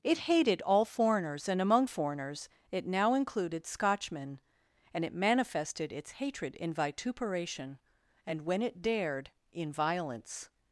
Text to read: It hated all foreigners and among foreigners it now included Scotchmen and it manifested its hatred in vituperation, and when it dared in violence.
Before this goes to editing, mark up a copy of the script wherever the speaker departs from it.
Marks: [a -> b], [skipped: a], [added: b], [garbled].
It hated all foreigners and among foreigners it now included Scotchmen and it manifested its hatred in vituperation, and when it dared in violence.